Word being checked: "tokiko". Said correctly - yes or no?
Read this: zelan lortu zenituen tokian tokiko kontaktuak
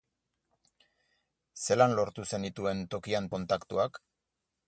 no